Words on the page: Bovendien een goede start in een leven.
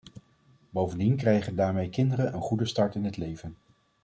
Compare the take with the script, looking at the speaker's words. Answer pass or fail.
fail